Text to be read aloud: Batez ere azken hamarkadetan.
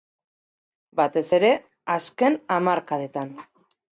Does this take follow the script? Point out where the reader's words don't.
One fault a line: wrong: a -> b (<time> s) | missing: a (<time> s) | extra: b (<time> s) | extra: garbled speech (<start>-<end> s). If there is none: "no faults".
no faults